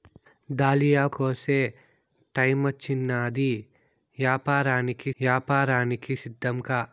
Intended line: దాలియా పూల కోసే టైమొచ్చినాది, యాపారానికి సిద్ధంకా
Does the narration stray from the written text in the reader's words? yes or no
yes